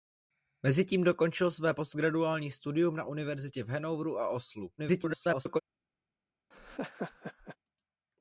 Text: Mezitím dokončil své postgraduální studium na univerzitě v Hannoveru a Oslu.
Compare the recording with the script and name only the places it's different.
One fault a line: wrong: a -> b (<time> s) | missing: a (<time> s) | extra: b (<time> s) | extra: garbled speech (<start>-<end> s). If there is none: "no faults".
extra: garbled speech (4.8-5.6 s)